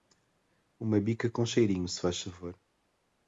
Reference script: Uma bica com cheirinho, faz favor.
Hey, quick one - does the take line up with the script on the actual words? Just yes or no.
no